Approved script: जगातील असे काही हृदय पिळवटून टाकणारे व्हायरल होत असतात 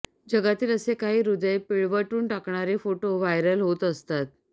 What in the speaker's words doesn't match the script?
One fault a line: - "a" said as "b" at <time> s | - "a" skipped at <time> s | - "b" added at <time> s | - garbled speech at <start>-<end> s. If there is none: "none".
- "फोटो" added at 2.8 s